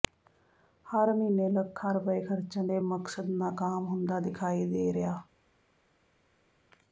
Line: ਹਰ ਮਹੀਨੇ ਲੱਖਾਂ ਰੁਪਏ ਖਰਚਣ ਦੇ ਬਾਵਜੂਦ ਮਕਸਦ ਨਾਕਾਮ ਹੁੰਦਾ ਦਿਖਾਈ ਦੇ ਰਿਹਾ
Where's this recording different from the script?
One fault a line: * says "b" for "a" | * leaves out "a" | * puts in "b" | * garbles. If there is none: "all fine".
* leaves out "ਬਾਵਜੂਦ"